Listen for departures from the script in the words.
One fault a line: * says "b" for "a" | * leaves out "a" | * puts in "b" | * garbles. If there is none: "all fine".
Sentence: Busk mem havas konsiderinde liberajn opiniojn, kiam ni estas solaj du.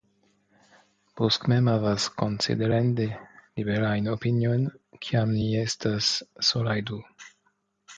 all fine